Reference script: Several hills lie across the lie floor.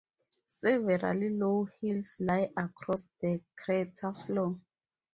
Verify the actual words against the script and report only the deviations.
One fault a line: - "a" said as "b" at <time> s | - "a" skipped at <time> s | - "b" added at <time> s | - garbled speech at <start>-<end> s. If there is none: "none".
- "low" added at 1.3 s
- "lie" said as "crater" at 3.5 s